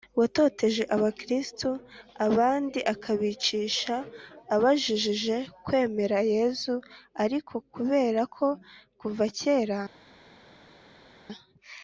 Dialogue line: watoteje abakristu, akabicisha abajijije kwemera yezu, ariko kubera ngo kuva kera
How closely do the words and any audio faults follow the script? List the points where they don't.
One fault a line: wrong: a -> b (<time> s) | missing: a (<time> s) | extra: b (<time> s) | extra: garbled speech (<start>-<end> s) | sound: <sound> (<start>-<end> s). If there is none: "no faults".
extra: abandi (2.3 s)
wrong: ngo -> ko (8.3 s)